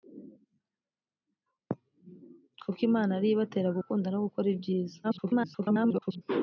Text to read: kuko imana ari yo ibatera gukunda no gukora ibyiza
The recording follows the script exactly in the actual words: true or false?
false